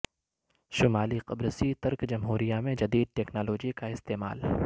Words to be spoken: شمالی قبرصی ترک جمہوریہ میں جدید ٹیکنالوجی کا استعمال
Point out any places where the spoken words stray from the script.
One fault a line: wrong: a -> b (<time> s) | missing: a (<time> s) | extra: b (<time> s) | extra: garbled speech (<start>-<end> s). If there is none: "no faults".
no faults